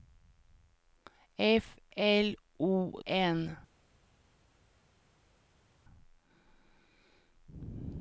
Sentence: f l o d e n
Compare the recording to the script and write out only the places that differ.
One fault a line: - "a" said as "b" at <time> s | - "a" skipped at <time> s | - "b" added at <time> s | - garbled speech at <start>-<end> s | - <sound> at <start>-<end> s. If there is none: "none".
- "d e" skipped at 2.9 s